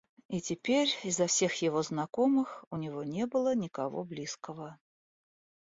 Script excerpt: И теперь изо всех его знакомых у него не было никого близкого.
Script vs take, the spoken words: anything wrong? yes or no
no